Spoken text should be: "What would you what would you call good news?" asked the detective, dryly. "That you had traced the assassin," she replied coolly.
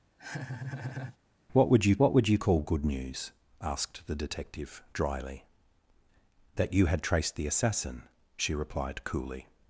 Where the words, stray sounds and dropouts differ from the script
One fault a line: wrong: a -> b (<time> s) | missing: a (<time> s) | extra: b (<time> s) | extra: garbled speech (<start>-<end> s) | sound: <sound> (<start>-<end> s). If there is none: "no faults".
sound: laugh (0.2-1.2 s)